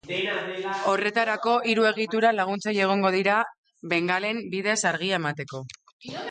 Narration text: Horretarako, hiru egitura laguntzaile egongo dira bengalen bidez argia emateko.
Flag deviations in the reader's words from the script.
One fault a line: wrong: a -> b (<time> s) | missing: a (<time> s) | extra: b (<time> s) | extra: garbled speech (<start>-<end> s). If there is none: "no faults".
no faults